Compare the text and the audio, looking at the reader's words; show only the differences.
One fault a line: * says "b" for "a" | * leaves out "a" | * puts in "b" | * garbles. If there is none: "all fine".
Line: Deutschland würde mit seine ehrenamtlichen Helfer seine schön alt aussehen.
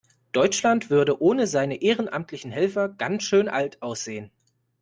* says "ohne" for "mit"
* says "ganz" for "seine"